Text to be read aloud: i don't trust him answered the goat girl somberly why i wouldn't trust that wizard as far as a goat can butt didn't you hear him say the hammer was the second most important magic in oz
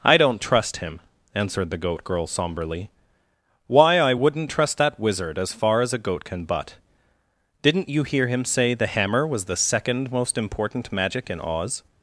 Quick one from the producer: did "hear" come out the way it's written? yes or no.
yes